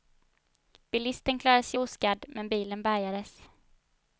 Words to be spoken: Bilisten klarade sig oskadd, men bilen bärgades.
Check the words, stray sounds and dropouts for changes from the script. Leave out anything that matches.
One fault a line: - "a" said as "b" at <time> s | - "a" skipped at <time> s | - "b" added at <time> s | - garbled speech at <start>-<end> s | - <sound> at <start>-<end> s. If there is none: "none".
none